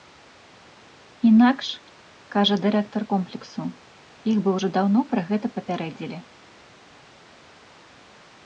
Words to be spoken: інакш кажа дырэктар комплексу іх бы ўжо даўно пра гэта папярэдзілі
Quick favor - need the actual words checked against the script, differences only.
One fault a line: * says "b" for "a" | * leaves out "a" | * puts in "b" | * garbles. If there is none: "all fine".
all fine